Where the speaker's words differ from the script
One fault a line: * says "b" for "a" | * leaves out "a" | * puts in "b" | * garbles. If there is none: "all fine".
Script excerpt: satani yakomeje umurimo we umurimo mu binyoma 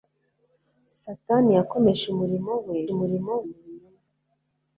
all fine